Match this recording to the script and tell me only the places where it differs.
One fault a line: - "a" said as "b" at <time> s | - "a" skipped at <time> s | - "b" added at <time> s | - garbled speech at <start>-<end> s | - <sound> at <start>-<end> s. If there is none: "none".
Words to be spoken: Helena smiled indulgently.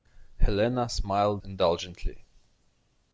none